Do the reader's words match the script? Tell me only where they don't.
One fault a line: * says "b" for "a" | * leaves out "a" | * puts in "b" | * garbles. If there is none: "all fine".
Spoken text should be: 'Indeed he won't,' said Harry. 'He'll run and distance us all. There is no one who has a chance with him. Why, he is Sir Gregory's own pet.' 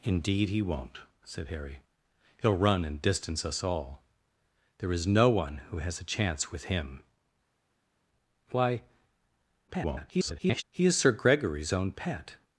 * garbles